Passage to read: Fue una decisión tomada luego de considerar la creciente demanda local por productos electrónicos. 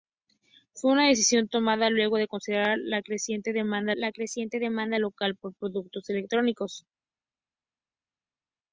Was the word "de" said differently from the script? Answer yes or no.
no